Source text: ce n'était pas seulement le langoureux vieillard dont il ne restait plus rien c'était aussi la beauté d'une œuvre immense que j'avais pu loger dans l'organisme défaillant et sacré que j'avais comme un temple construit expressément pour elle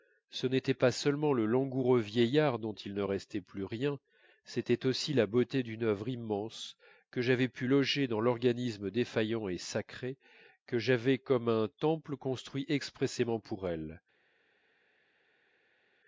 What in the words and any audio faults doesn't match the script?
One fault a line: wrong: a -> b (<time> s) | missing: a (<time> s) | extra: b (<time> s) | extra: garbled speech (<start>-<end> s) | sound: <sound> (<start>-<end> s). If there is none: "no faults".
no faults